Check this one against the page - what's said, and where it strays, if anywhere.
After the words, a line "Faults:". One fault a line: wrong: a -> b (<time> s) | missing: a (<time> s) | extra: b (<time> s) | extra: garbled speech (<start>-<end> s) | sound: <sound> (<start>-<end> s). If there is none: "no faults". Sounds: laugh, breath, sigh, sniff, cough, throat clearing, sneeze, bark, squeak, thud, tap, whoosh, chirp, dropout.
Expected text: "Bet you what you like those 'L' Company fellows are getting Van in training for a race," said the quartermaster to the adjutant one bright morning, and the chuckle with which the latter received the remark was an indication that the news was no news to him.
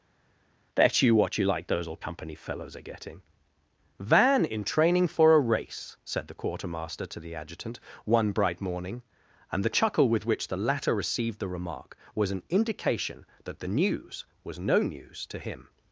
"Bet you what you like those 'Old' Company fellows are getting Van in training for a race," said the quartermaster to the adjutant one bright morning, and the chuckle with which the latter received the remark was an indication that the news was no news to him.
Faults:
wrong: L -> Old (1.9 s)